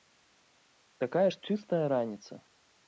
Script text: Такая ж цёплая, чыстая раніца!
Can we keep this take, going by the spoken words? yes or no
no